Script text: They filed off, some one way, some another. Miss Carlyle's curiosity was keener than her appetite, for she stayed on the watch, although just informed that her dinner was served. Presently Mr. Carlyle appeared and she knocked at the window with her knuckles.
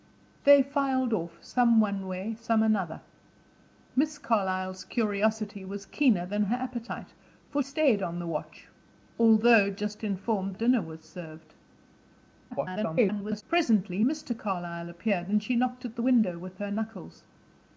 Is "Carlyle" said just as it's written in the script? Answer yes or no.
yes